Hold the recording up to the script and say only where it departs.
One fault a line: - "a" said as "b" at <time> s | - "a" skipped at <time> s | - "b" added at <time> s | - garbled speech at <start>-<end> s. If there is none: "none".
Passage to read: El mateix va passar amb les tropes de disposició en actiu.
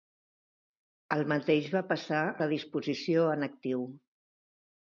- "amb les tropes" skipped at 2.2 s